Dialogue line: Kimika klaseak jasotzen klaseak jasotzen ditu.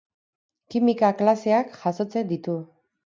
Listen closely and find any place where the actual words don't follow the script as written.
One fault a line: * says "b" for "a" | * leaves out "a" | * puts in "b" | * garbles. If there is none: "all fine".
* leaves out "klaseak jasotzen"